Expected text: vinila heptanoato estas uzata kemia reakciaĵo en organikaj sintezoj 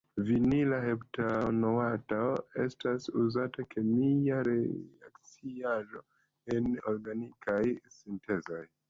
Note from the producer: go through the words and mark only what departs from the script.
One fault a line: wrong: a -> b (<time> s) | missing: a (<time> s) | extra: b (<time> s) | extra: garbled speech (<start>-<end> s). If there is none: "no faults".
no faults